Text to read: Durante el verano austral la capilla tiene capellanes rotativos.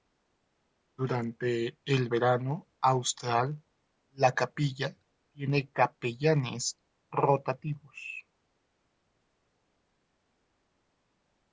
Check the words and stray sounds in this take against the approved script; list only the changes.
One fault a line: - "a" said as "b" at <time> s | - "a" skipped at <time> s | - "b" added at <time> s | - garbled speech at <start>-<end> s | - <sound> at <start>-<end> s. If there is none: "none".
none